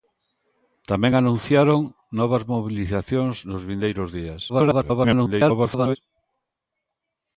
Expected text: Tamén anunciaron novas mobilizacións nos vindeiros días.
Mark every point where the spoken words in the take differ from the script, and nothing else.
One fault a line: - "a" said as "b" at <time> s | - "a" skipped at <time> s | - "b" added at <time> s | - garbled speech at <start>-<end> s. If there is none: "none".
- garbled speech at 4.5-6.0 s